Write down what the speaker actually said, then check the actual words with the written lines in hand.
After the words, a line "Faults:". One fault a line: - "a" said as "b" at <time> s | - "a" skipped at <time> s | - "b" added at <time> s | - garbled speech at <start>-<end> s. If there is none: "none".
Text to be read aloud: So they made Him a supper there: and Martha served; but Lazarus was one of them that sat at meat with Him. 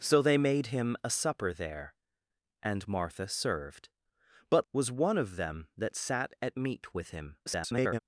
So they made Him a supper there: and Martha served; but Was one of them that sat at meat with Him. [garbled]
Faults:
- "Lazarus" skipped at 4.7 s
- garbled speech at 7.5-8.0 s